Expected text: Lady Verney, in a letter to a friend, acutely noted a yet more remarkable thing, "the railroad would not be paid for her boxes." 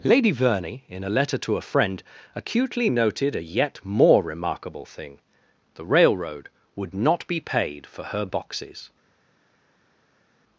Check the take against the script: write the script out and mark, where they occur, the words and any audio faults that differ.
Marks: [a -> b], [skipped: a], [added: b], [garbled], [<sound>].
Lady Verney, in a letter to a friend, acutely noted a yet more remarkable thing, "the railroad would not be paid for her boxes."